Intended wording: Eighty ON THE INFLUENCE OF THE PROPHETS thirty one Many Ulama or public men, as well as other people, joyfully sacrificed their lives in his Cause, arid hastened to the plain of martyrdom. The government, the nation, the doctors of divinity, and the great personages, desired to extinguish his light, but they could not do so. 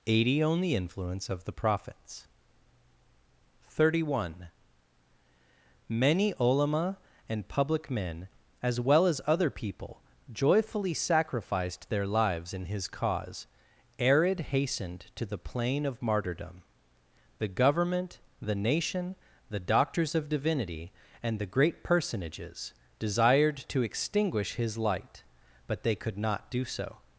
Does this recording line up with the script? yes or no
no